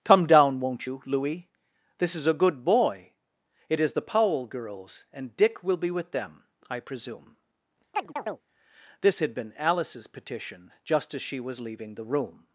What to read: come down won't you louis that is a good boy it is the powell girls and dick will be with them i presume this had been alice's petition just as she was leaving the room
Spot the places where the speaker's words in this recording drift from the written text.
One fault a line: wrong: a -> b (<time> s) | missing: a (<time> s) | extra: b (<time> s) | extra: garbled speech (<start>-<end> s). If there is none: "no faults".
wrong: that -> this (2.0 s)